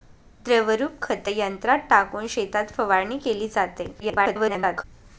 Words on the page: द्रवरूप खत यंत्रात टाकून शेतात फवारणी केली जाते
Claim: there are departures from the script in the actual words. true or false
true